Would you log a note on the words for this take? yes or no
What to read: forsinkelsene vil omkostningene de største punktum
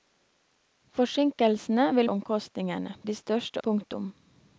no